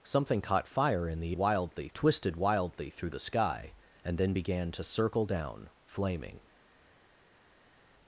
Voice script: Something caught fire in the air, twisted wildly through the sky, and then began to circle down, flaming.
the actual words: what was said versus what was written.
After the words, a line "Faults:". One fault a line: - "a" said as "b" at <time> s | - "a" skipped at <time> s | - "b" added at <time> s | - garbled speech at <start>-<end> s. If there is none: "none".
Something caught fire in the wildly, twisted wildly through the sky, and then began to circle down, flaming.
Faults:
- "air" said as "wildly" at 1.4 s